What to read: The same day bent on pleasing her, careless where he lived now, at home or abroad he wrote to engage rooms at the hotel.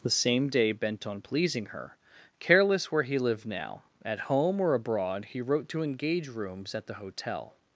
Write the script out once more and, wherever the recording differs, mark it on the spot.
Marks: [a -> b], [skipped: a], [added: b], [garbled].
The same day bent on pleasing her, careless where he lived now, at home or abroad he wrote to engage rooms at the hotel.